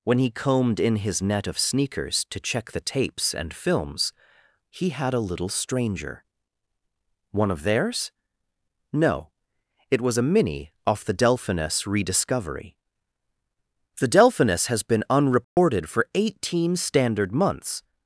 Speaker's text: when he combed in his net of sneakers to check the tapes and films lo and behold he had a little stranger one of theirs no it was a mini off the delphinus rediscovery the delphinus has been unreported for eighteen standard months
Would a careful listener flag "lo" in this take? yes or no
yes